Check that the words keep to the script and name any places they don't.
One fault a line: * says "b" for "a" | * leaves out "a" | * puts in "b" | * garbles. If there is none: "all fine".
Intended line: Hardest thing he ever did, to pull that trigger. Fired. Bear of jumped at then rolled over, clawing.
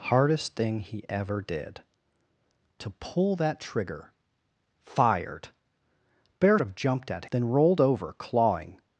all fine